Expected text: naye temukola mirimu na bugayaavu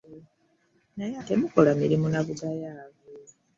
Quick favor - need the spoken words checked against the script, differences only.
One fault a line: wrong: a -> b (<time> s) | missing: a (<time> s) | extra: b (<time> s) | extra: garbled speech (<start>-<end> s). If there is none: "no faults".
no faults